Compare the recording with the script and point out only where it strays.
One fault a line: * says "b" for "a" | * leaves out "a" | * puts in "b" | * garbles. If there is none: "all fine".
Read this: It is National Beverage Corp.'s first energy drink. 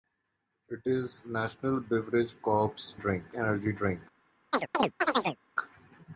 * says "drink" for "first"